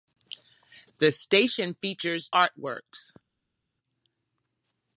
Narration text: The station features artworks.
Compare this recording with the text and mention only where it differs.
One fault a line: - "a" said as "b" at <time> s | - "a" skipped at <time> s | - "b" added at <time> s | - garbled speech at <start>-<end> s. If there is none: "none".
none